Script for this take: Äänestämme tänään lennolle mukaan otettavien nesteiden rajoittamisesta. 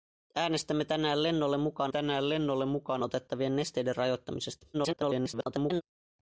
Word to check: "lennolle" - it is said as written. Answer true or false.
true